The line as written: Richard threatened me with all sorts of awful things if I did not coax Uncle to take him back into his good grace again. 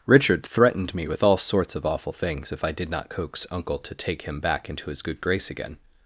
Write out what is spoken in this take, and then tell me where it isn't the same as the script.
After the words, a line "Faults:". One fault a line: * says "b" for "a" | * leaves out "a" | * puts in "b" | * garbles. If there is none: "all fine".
Richard threatened me with all sorts of awful things if I did not coax Uncle to take him back into his good grace again.
Faults:
all fine